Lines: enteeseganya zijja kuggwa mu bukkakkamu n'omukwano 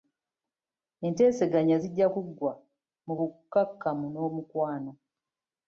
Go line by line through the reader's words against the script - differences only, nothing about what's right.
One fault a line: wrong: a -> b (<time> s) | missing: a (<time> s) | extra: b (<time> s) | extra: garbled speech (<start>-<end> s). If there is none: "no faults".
no faults